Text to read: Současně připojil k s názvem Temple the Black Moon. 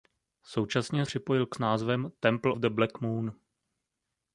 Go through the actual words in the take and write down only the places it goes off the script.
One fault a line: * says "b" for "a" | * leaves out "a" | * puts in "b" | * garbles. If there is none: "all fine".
all fine